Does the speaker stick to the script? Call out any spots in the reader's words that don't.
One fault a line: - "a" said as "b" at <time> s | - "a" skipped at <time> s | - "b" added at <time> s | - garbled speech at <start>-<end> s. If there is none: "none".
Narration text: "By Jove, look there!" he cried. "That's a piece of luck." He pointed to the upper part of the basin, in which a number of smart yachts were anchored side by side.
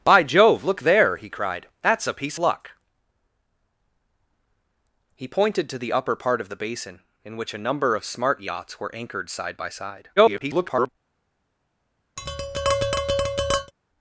- "of" skipped at 2.4 s
- garbled speech at 10.2-10.9 s